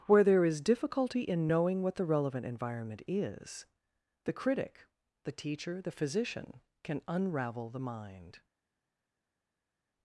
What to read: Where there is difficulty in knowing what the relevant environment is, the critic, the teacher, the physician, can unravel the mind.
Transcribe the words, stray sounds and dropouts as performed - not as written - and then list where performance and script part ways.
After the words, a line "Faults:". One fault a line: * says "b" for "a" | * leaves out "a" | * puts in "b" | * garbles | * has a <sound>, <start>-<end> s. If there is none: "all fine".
Where there is difficulty in knowing what the relevant environment is, the critic, the teacher, the physician, can unravel the mind.
Faults:
all fine